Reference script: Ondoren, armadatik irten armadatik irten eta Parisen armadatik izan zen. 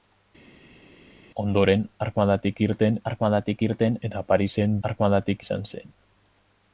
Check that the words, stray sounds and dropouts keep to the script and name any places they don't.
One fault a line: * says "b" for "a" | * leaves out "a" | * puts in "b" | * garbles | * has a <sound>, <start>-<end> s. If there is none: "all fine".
all fine